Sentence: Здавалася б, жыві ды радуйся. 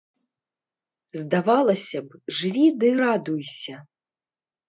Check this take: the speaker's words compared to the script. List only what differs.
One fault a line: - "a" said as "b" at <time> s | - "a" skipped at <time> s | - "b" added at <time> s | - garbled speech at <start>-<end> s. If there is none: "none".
none